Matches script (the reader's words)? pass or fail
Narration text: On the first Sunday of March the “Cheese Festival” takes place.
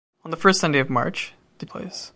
fail